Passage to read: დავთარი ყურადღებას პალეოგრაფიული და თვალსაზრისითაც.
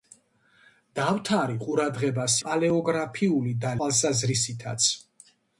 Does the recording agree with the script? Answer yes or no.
yes